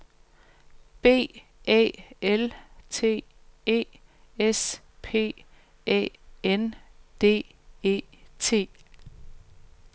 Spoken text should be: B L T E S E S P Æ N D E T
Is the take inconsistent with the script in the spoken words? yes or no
yes